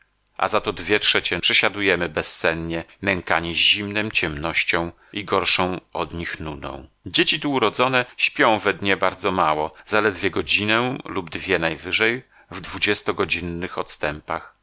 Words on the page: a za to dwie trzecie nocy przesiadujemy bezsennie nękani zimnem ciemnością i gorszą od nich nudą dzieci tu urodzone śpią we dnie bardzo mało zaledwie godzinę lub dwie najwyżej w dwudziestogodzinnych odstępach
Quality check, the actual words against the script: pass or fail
fail